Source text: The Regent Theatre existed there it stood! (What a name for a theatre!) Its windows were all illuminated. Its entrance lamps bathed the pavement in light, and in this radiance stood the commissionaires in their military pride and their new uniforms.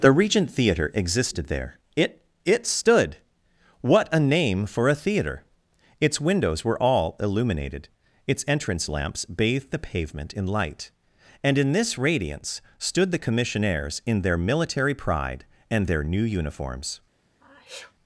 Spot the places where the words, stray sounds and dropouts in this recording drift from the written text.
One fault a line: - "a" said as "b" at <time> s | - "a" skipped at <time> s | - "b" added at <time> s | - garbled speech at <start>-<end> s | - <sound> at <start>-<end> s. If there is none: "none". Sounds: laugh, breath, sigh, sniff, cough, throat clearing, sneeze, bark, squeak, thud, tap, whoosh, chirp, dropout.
- "it" added at 2.4 s
- sneeze at 17.4-17.9 s